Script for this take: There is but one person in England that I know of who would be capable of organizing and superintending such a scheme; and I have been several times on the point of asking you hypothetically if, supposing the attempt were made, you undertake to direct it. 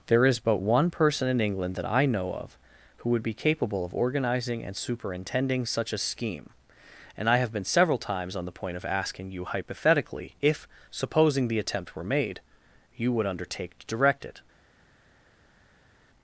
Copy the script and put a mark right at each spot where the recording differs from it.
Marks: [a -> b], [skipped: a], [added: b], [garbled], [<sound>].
There is but one person in England that I know of who would be capable of organizing and superintending such a scheme; and I have been several times on the point of asking you hypothetically if, supposing the attempt were made, you [added: would] undertake to direct it.